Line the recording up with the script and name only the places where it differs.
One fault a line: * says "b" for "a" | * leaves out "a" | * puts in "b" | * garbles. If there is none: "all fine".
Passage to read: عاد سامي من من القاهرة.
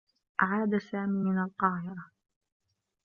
* leaves out "من"